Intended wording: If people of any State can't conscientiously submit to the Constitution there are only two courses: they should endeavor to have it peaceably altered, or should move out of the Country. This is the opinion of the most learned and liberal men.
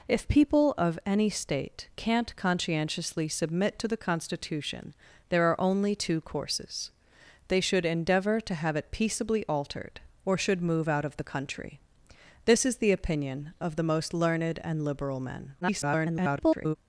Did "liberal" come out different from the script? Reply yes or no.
no